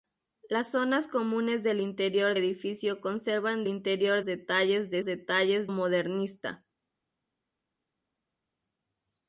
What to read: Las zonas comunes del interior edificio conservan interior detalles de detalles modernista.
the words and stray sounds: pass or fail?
pass